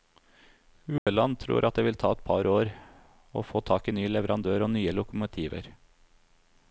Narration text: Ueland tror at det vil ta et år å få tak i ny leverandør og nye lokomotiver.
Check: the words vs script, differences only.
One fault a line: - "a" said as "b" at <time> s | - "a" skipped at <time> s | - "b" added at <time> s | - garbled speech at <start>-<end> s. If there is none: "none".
- "par" added at 2.3 s